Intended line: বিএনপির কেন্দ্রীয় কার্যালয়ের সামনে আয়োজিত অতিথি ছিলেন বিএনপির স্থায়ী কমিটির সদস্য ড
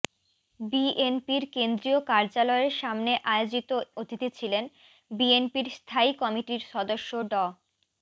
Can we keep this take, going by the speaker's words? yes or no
yes